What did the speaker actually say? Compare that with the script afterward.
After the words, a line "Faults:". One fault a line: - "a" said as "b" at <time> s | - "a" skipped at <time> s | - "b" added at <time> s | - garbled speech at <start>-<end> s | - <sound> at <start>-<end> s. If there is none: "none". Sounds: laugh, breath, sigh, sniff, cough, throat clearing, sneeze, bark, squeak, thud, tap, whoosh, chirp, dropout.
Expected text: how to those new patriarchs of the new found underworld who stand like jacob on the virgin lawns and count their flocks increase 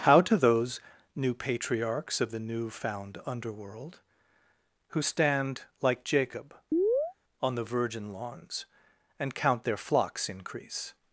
how to those new patriarchs of the new found underworld who stand like jacob on the virgin lawns and count their flocks increase
Faults:
- chirp at 6.7-7.1 s